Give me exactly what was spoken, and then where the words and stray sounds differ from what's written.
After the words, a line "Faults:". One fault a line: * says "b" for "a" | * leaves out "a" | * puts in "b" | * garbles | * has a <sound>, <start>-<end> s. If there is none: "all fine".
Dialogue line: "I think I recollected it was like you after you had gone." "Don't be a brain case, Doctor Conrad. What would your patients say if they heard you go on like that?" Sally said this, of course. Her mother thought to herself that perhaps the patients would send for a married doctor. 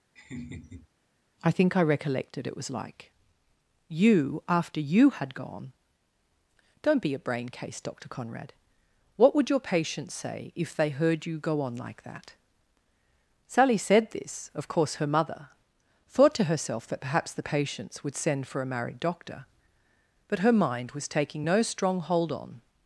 "I think I recollected it was like you after you had gone." "Don't be a brain case, Doctor Conrad. What would your patients say if they heard you go on like that?" Sally said this, of course. Her mother thought to herself that perhaps the patients would send for a married doctor. But her mind was taking no strong hold on
Faults:
* has a laugh, 0.2-0.9 s
* puts in "But her mind was taking no strong hold on"